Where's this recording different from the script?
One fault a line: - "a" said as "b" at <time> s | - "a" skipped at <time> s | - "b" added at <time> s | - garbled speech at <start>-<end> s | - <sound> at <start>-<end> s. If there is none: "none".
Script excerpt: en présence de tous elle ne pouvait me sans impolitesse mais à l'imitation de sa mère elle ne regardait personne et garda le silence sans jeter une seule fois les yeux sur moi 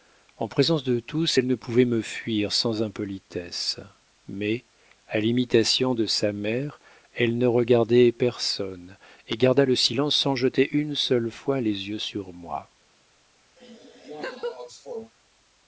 - "fuir" added at 2.0 s
- laugh at 13.6-15.1 s